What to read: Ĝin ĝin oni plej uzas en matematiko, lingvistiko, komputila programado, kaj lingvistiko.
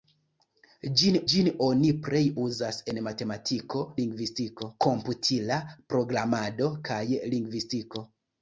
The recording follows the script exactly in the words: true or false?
true